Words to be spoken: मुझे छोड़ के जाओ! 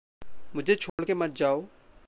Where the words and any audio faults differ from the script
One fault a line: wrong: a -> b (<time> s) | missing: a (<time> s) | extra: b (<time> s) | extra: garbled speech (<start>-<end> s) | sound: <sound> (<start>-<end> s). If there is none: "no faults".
sound: dropout (0.9-1.0 s)
extra: मत (1.1 s)